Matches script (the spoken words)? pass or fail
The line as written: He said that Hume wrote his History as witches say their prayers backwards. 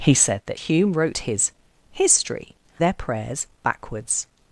fail